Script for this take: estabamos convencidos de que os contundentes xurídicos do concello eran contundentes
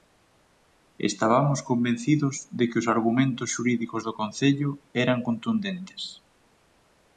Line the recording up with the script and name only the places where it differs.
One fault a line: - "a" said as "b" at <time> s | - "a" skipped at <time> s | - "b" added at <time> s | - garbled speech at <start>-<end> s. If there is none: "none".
- "contundentes" said as "argumentos" at 3.0 s